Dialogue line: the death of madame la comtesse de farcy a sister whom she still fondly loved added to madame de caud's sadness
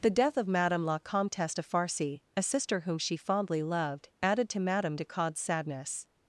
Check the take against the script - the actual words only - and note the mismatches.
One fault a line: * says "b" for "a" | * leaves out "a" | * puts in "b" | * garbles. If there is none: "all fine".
* leaves out "still"